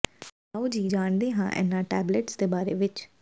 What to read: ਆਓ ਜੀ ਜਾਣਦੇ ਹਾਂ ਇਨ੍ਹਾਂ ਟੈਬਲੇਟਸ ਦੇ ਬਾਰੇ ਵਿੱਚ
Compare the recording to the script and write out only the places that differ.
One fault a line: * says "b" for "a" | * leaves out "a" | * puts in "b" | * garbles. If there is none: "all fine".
all fine